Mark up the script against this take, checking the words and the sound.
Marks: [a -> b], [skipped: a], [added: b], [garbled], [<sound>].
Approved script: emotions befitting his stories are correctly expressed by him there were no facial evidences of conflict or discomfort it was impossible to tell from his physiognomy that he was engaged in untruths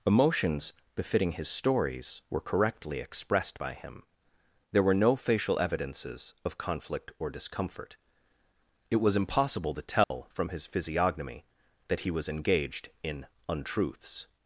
emotions befitting his stories [are -> were] correctly expressed by him there were no facial evidences of conflict or discomfort it was impossible to tell [dropout] from his physiognomy that he was engaged in untruths